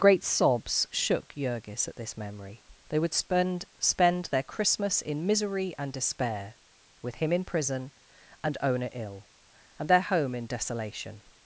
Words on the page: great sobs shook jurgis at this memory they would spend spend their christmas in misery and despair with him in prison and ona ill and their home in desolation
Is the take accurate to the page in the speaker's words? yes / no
yes